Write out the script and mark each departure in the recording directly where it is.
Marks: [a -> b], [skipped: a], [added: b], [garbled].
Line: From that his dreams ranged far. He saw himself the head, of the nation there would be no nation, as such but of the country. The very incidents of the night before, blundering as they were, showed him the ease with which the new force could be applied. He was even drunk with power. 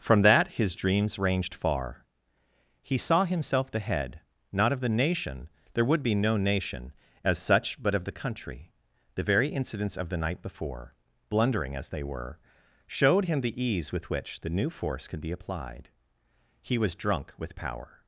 From that his dreams ranged far. He saw himself the head, [added: not] of the nation there would be no nation, as such but of the country. The very incidents of the night before, blundering as they were, showed him the ease with which the new force could be applied. He was [skipped: even] drunk with power.